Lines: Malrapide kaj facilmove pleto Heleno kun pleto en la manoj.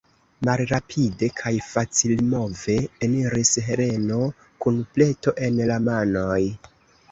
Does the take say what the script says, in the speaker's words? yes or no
no